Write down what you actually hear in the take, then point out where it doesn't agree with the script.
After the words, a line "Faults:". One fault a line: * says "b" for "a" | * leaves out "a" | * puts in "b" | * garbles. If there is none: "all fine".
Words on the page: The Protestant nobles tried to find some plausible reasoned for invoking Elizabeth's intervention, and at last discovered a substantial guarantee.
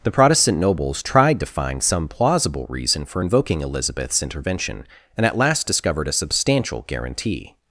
The Protestant nobles tried to find some plausible reason for invoking Elizabeth's intervention, and at last discovered a substantial guarantee.
Faults:
* says "reason" for "reasoned"